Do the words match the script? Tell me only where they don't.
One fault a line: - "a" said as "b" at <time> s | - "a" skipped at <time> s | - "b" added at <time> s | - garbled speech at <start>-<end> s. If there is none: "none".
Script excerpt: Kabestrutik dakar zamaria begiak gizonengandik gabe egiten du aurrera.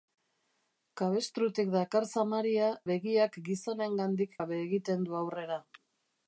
none